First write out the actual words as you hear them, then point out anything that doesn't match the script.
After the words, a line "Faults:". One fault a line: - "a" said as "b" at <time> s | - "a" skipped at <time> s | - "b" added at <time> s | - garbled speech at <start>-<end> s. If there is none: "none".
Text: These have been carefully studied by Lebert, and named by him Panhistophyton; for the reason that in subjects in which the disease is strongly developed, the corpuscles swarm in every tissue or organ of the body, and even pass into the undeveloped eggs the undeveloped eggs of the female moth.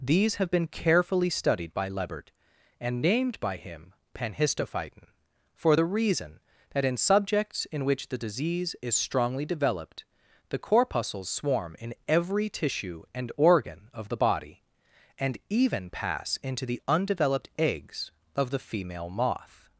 These have been carefully studied by Lebert, and named by him Panhistophyton; for the reason that in subjects in which the disease is strongly developed, the corpuscles swarm in every tissue and organ of the body, and even pass into the undeveloped eggs of the female moth.
Faults:
- "or" said as "and" at 13.1 s
- "the undeveloped eggs" skipped at 18.1 s